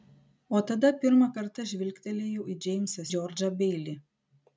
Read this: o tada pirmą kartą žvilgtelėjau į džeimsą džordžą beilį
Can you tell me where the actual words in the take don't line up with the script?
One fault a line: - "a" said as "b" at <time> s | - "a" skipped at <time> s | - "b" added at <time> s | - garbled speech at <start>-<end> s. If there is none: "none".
none